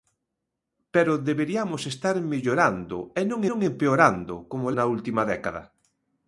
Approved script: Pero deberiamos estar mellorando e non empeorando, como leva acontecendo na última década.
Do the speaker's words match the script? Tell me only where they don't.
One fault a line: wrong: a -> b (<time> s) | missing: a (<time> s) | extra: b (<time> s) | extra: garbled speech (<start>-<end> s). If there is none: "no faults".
extra: non (3.5 s)
missing: leva acontecendo (4.7 s)